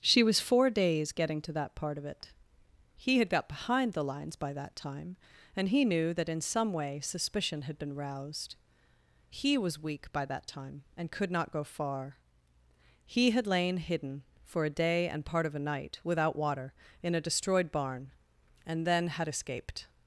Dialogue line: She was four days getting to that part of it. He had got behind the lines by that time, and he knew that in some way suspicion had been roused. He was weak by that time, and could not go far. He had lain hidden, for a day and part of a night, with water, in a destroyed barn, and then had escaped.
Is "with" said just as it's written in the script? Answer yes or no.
no